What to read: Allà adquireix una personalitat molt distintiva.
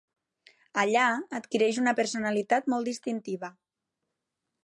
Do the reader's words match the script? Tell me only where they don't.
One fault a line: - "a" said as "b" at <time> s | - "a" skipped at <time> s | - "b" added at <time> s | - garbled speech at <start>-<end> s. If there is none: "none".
none